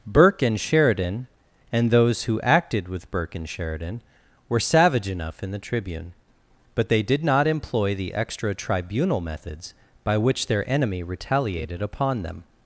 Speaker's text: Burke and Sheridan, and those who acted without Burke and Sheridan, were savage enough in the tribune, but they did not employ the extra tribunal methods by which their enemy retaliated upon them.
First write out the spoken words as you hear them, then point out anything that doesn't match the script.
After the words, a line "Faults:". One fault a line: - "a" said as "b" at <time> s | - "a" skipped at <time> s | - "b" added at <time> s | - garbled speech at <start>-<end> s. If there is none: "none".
Burke and Sheridan, and those who acted with Burke and Sheridan, were savage enough in the tribune, but they did not employ the extra tribunal methods by which their enemy retaliated upon them.
Faults:
- "without" said as "with" at 2.9 s